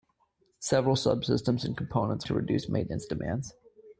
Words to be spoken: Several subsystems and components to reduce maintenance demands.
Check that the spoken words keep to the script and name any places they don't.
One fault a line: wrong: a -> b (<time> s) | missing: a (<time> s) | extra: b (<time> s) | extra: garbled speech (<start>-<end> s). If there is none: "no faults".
no faults